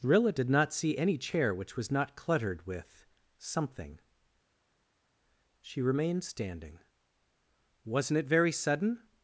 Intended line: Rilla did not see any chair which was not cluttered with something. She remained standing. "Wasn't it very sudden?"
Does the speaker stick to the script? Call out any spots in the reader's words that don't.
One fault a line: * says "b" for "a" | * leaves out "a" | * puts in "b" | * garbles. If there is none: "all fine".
all fine